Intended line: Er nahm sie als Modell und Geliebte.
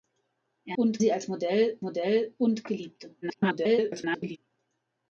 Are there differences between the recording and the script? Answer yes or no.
yes